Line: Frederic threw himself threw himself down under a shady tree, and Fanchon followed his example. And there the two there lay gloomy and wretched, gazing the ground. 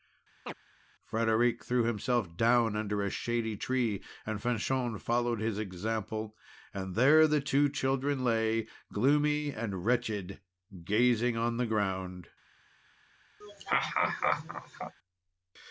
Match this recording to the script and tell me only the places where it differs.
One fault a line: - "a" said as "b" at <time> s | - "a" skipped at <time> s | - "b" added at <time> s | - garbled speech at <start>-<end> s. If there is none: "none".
- "threw himself" skipped at 2.4 s
- "there" said as "children" at 7.7 s
- "on" added at 11.4 s